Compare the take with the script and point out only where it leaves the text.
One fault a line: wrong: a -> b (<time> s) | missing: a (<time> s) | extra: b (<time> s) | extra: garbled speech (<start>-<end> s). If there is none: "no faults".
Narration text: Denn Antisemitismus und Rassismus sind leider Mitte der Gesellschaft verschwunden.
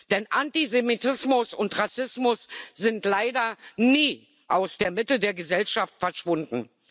extra: nie aus der (3.8 s)